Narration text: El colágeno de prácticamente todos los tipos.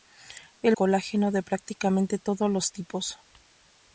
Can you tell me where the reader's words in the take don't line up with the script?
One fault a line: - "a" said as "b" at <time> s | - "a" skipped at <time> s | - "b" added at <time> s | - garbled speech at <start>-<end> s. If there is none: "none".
none